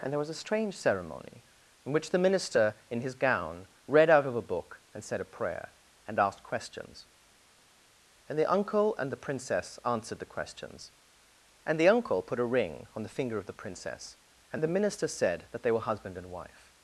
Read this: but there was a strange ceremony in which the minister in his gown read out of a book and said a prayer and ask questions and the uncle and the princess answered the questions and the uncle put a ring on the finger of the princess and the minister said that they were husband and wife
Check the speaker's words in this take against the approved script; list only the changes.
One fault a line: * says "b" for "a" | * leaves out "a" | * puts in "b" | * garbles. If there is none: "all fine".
* says "and" for "but"
* says "asked" for "ask"